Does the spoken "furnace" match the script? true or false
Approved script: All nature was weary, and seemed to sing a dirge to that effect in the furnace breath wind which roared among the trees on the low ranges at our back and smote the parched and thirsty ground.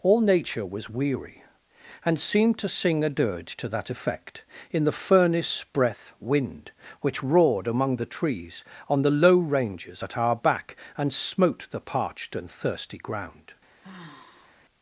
true